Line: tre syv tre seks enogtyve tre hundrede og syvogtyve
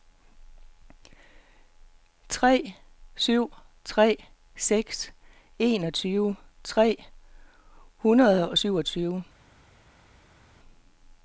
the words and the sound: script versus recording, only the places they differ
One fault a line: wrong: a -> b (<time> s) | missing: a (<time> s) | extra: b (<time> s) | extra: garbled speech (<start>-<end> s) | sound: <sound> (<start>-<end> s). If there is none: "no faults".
no faults